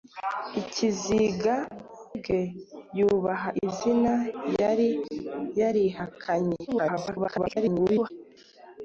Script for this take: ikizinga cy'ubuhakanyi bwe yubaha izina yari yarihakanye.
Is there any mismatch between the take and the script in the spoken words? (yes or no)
yes